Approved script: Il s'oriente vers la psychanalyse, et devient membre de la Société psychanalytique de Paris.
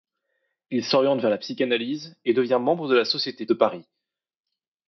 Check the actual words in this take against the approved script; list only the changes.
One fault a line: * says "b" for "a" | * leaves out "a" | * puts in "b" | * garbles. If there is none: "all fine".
* leaves out "psychanalytique"